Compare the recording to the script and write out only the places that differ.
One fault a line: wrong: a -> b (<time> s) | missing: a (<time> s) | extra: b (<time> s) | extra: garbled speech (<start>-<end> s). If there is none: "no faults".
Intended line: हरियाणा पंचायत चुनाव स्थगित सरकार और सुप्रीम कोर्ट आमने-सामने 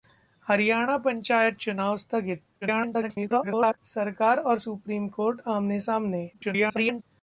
extra: garbled speech (2.6-3.8 s)
extra: garbled speech (6.3-7.0 s)